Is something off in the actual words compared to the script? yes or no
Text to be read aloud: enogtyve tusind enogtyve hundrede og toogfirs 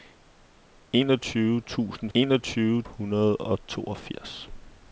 no